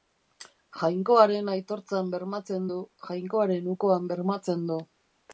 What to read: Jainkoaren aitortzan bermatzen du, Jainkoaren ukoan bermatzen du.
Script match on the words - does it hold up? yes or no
yes